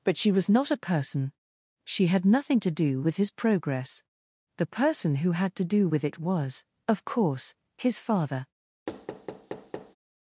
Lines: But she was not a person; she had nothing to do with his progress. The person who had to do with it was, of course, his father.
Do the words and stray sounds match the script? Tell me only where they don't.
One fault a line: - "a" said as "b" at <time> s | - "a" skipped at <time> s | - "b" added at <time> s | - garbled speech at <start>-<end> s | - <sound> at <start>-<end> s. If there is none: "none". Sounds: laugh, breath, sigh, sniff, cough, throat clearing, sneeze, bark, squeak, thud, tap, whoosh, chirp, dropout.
- thud at 8.9-10.0 s